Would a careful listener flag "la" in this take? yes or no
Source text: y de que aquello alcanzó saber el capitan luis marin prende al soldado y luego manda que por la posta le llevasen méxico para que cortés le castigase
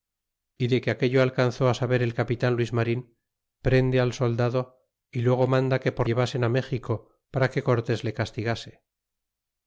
yes